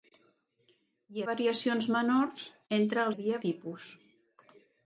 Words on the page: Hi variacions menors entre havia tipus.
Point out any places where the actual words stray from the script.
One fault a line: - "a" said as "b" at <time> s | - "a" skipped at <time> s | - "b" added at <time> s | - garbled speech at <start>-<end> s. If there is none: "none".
none